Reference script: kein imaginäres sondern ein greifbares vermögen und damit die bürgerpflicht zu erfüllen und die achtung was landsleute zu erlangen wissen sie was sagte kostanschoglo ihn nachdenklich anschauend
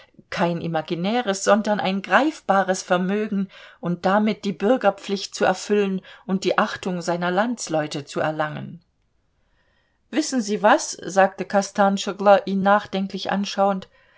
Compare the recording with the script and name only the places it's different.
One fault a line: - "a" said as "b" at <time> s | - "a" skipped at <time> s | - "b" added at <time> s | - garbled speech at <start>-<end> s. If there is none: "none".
- "was" said as "seiner" at 7.0 s